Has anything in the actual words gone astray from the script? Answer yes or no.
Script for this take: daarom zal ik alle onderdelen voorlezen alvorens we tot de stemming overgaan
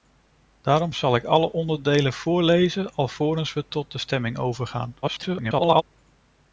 yes